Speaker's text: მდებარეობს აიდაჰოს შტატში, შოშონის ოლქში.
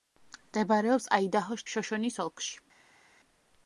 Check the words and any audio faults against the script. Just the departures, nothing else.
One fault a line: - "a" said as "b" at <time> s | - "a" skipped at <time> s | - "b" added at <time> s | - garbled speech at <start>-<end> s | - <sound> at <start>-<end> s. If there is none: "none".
- "შტატში" skipped at 1.6 s